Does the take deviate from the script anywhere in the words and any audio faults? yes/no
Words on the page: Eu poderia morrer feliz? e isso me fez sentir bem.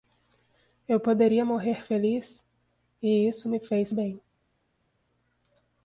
yes